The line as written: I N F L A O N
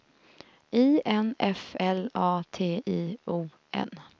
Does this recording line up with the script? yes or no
no